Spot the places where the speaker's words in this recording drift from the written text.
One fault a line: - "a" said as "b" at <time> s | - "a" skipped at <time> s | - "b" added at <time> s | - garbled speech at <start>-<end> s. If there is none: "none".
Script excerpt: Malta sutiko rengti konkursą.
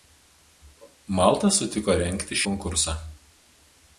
none